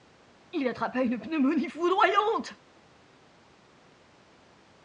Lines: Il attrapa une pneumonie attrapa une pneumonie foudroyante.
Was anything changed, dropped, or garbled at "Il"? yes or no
no